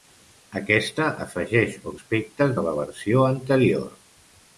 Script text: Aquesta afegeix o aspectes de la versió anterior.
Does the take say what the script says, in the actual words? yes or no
yes